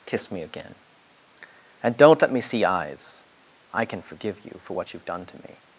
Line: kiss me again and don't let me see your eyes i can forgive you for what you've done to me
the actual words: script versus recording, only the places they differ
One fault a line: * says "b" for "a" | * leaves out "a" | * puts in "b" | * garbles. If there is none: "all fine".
* leaves out "your"